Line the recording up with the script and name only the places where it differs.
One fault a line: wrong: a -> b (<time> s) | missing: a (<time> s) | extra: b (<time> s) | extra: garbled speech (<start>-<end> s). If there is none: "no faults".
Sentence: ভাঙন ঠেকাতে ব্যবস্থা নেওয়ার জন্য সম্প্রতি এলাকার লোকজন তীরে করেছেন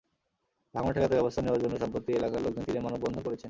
extra: মানববন্ধন (2.8 s)